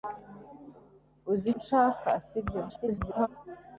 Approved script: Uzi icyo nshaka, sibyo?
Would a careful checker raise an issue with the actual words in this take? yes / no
yes